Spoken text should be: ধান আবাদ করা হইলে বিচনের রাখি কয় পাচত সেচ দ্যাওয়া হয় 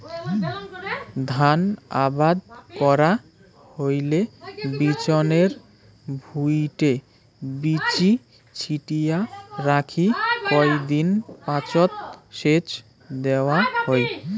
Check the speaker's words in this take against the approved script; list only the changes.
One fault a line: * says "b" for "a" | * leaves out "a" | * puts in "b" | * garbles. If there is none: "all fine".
* puts in "ভুঁইটে বীচি ছিটিয়া"
* puts in "দিন"